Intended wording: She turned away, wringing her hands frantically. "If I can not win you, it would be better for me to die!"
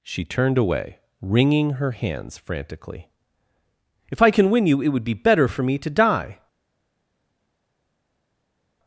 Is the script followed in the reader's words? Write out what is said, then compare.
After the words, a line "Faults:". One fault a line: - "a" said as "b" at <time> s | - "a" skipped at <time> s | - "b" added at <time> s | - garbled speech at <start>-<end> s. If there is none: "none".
She turned away, wringing her hands frantically. "If I can win you, it would be better for me to die!"
Faults:
- "not" skipped at 4.5 s